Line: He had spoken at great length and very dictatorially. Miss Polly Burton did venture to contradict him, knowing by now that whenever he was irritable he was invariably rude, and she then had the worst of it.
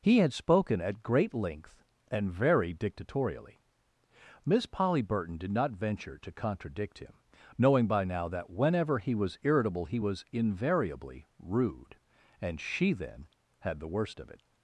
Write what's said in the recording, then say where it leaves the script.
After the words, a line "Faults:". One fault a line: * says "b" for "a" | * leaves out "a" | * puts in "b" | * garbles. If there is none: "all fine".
He had spoken at great length and very dictatorially. Miss Polly Burton did not venture to contradict him, knowing by now that whenever he was irritable he was invariably rude, and she then had the worst of it.
Faults:
* puts in "not"